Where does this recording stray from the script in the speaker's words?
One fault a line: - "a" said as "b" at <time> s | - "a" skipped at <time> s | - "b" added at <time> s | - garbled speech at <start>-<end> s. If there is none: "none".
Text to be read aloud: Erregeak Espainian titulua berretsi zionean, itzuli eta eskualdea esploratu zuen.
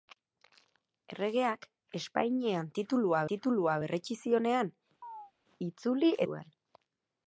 - "titulua" added at 3.3 s
- "eta eskualdea esploratu" skipped at 6.2 s